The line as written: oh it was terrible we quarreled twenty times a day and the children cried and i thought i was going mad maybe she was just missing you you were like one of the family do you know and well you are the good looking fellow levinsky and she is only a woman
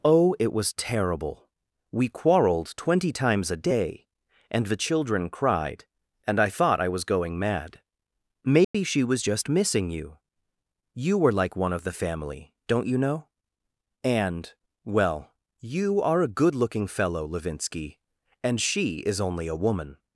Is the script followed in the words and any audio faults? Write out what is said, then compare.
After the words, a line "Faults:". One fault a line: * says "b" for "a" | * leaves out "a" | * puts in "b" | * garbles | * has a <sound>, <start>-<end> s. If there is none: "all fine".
oh it was terrible we quarreled twenty times a day and the children cried and i thought i was going mad maybe she was just missing you you were like one of the family don't you know and well you are a good looking fellow levinsky and she is only a woman
Faults:
* has a dropout, 8.6-8.7 s
* says "don't" for "do"
* says "a" for "the"